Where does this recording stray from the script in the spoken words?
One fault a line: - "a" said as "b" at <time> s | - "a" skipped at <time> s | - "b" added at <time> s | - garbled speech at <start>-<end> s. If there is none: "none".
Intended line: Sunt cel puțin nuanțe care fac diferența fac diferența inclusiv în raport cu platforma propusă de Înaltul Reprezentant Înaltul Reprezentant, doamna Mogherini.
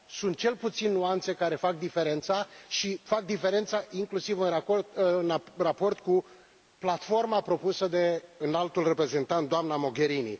- "și" added at 2.7 s
- "Înaltul Reprezentant" skipped at 9.5 s